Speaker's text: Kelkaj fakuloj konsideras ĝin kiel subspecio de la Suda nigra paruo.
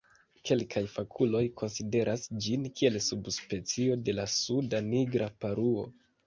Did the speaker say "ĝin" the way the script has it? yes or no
yes